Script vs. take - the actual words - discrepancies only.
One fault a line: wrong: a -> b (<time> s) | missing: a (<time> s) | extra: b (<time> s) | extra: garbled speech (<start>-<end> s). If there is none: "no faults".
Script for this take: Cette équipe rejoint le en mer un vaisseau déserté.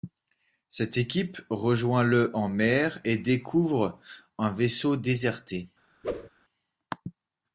extra: et découvre (3.0 s)